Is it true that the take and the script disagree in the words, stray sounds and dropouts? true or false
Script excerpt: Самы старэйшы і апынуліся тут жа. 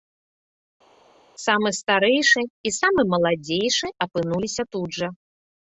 true